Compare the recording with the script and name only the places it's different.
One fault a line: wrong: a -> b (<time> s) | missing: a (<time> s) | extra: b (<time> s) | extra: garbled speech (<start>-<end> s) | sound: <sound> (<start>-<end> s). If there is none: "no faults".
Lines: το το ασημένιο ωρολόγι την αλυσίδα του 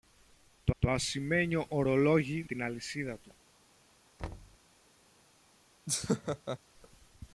sound: thud (4.2-4.6 s)
sound: laugh (5.9-6.6 s)